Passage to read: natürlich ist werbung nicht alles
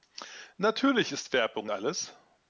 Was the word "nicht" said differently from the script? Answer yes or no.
yes